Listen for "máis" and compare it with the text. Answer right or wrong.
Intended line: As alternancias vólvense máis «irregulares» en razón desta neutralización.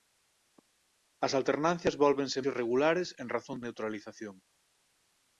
wrong